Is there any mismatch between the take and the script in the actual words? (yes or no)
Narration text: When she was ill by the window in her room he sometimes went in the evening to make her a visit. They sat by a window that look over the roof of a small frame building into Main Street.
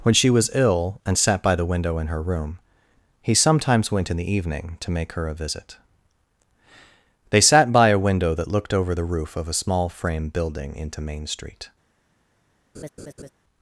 yes